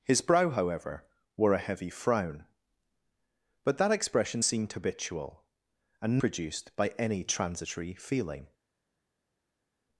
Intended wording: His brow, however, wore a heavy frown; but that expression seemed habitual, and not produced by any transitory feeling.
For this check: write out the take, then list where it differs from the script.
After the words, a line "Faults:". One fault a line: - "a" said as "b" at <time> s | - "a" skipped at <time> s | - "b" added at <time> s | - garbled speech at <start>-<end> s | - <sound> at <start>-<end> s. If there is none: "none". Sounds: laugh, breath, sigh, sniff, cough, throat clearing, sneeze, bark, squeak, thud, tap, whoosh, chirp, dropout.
His brow, however, wore a heavy frown; but that expression seemed habitual, and produced by any transitory feeling.
Faults:
- "not" skipped at 6.2 s